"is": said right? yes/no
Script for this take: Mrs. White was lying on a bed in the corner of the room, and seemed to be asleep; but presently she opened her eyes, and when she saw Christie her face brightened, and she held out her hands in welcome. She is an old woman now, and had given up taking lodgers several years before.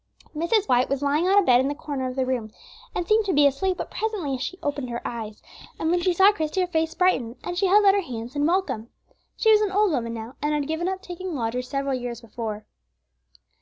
no